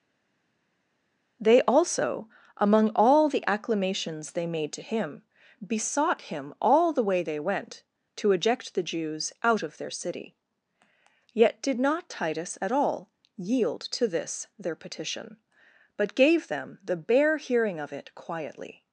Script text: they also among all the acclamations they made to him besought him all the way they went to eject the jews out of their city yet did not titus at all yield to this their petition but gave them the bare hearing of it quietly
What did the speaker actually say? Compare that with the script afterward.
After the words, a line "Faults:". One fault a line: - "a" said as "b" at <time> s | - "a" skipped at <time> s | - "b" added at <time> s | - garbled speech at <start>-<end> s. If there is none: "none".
they also among all the acclamations they made to him besought him all the way they went to eject the jews out of their city yet did not titus at all yield to this their petition but gave them the bare hearing of it quietly
Faults:
none